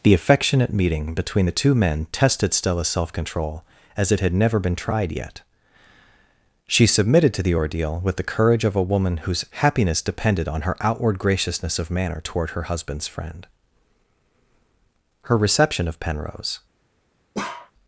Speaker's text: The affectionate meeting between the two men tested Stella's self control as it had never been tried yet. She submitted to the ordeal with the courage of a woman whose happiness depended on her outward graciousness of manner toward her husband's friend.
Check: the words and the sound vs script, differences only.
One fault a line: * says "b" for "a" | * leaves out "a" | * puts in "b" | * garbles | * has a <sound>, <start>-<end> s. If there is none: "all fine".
* puts in "Her reception of Penrose"
* has a bark, 17.3-17.7 s